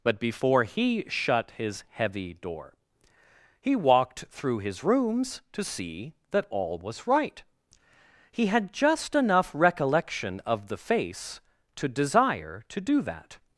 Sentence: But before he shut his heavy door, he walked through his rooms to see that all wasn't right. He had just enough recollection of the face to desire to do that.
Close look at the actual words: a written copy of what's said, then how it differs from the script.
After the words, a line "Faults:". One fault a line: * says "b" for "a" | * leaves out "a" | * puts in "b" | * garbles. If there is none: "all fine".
But before he shut his heavy door, he walked through his rooms to see that all was right. He had just enough recollection of the face to desire to do that.
Faults:
* says "was" for "wasn't"